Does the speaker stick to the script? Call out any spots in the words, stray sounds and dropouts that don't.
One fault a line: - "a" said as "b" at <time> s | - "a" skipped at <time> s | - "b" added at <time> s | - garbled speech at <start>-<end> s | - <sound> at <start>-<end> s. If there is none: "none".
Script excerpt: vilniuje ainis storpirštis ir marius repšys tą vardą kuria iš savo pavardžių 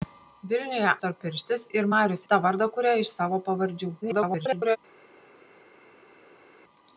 - "ainis" skipped at 0.9 s
- "repšys" skipped at 2.2 s
- garbled speech at 4.0-4.8 s